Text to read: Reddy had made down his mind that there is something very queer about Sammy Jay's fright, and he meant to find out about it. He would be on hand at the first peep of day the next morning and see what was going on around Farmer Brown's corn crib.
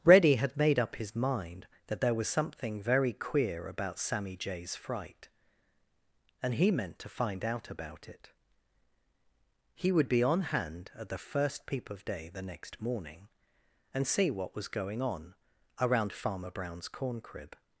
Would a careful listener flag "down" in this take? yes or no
yes